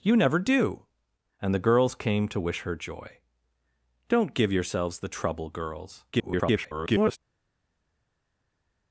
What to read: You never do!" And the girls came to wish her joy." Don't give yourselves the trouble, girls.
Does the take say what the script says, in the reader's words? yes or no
no